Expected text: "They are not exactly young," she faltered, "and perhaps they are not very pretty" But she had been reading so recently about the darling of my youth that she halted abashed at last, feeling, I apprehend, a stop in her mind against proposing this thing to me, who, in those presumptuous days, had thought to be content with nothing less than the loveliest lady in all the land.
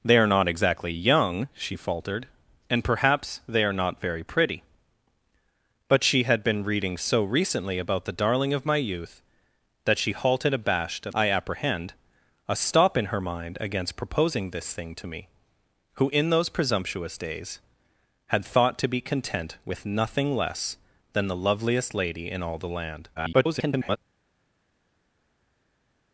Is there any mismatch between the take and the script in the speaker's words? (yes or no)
yes